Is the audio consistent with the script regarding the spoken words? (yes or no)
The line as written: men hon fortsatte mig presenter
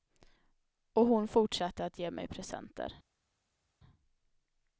no